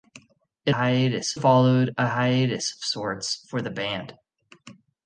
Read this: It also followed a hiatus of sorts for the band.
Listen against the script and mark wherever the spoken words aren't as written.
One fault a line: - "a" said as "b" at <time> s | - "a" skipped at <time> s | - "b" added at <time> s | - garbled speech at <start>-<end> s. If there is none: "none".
- "also" said as "hiatus" at 0.7 s